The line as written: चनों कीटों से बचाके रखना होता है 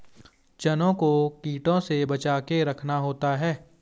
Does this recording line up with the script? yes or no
no